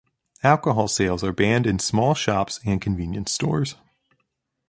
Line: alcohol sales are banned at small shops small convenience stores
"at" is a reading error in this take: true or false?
true